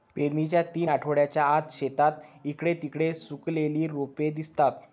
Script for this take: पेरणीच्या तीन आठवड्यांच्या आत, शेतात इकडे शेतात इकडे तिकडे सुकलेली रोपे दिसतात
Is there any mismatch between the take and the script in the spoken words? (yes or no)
yes